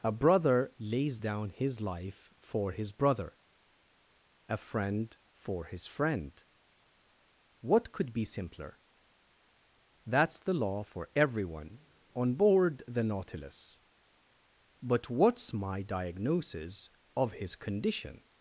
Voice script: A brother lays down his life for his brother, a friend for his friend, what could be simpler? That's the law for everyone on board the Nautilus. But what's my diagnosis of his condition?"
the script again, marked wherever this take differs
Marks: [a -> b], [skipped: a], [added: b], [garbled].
A brother lays down his life for his brother, a friend for his friend, what could be simpler? That's the law for everyone on board the Nautilus. But what's my diagnosis of his condition?"